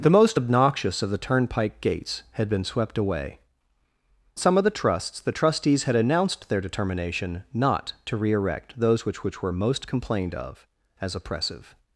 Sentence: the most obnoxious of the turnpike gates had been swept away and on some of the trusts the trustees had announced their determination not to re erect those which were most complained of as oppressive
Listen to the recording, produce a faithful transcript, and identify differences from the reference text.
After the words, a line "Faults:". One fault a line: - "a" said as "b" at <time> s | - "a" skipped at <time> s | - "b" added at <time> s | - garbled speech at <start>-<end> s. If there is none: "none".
the most obnoxious of the turnpike gates had been swept away some of the trusts the trustees had announced their determination not to re erect those which which were most complained of as oppressive
Faults:
- "and on" skipped at 3.4 s
- "which" added at 9.2 s